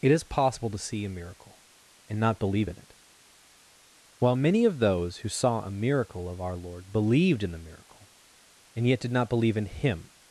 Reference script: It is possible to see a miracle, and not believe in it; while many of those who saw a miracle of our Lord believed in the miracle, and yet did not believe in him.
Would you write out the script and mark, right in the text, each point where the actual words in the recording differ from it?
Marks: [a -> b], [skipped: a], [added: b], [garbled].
It is possible to see a miracle, and not believe in it; while many of those who saw a miracle of our Lord believed in the miracle, and yet did not believe in him.